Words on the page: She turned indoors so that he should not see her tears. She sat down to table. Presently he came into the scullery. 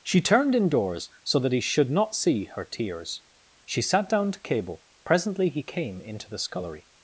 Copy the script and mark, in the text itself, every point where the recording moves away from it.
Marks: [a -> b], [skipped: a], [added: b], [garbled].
She turned indoors so that he should not see her tears. She sat down to [table. -> cable] Presently he came into the scullery.